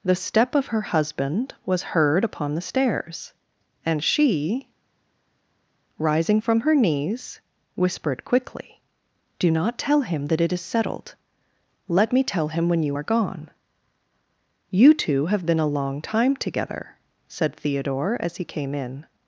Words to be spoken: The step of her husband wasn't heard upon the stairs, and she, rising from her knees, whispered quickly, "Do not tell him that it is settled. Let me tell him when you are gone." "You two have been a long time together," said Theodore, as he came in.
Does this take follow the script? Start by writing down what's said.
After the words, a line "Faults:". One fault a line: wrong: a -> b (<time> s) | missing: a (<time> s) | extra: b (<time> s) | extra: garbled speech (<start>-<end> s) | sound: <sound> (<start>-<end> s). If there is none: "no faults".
The step of her husband was heard upon the stairs, and she, rising from her knees, whispered quickly, "Do not tell him that it is settled. Let me tell him when you are gone." "You two have been a long time together," said Theodore, as he came in.
Faults:
wrong: wasn't -> was (1.6 s)